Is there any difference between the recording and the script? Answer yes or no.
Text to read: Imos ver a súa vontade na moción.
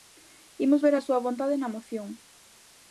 no